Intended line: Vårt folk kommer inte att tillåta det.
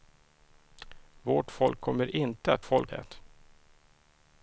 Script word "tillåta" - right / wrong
wrong